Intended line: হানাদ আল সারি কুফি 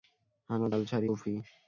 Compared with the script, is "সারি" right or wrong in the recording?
right